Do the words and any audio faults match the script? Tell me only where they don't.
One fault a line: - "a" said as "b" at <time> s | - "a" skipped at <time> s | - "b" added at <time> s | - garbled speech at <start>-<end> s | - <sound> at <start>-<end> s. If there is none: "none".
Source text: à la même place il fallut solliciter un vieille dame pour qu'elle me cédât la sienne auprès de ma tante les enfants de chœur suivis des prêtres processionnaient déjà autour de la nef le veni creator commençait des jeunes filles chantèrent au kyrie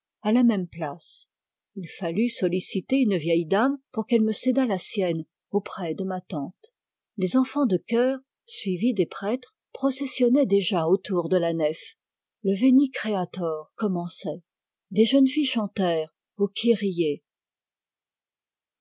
- "un" said as "une" at 3.0 s